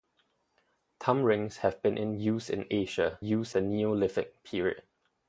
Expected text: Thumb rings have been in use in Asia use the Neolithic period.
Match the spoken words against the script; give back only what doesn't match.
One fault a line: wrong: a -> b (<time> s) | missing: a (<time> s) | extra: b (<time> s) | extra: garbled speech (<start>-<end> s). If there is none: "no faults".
no faults